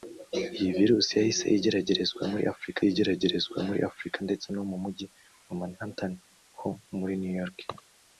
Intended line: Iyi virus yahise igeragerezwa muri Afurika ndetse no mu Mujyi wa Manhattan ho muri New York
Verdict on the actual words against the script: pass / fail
fail